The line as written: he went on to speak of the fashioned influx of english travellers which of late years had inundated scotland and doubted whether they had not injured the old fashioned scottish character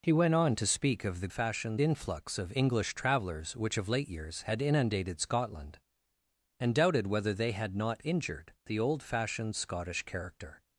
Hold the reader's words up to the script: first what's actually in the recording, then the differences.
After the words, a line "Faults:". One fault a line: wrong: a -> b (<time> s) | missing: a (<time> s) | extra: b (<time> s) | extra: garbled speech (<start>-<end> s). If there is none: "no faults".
he went on to speak of the fashioned influx of english travellers which of late years had inundated scotland and doubted whether they had not injured the old fashioned scottish character
Faults:
no faults